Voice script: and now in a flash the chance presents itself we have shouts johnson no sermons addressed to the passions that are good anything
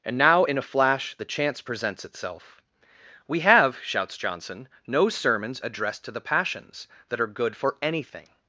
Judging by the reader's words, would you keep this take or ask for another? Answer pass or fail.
fail